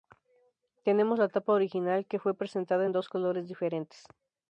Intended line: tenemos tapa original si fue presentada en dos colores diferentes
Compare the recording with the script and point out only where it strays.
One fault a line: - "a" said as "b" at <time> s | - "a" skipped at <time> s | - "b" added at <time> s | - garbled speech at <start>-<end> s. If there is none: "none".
- "la" added at 1.2 s
- "si" said as "que" at 2.1 s